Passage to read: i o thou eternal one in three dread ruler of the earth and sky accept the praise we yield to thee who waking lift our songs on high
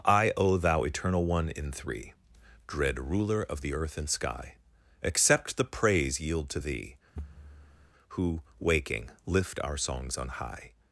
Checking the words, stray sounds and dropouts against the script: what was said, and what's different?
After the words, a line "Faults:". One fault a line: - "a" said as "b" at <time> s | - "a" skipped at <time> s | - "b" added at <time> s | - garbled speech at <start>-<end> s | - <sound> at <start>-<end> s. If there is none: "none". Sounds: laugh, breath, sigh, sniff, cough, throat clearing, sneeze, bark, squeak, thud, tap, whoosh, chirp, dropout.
i o thou eternal one in three dread ruler of the earth and sky accept the praise yield to thee who waking lift our songs on high
Faults:
- "we" skipped at 6.2 s
- thud at 7.2-7.9 s